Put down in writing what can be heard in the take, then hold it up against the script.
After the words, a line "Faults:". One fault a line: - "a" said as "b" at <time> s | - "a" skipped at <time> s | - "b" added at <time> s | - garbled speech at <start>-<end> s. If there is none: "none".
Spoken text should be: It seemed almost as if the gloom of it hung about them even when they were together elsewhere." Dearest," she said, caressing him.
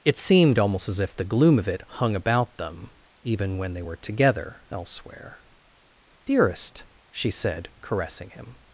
It seemed almost as if the gloom of it hung about them even when they were together elsewhere." Dearest," she said, caressing him.
Faults:
none